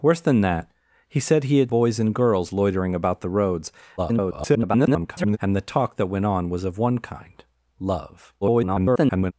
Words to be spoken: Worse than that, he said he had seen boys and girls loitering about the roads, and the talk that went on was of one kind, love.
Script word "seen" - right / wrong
wrong